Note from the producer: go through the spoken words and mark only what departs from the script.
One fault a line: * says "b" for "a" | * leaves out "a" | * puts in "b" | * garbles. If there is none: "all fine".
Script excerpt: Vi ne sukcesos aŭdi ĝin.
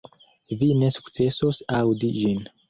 all fine